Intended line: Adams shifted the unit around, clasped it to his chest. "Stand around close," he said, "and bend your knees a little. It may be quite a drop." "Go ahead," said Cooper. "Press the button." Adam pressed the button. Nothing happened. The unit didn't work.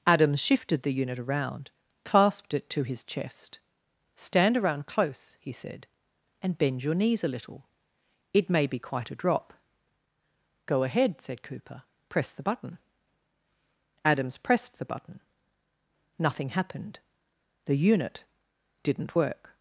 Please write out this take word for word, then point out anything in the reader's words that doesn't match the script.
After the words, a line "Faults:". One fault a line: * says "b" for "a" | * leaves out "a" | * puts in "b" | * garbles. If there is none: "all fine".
Adams shifted the unit around, clasped it to his chest. "Stand around close," he said, "and bend your knees a little. It may be quite a drop." "Go ahead," said Cooper. "Press the button." Adams pressed the button. Nothing happened. The unit didn't work.
Faults:
* says "Adams" for "Adam"